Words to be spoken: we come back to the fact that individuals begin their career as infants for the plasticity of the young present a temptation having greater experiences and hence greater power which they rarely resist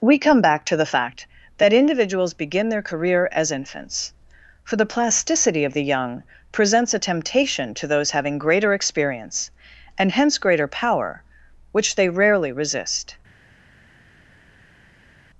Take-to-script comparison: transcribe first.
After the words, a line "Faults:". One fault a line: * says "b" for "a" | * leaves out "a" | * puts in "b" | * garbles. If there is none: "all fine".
we come back to the fact that individuals begin their career as infants for the plasticity of the young presents a temptation to those having greater experience and hence greater power which they rarely resist
Faults:
* says "presents" for "present"
* puts in "to those"
* says "experience" for "experiences"